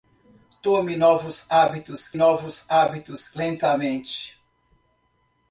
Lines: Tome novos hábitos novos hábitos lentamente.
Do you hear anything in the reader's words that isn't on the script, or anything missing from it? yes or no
no